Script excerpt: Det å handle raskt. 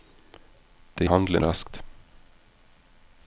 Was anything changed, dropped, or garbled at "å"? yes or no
no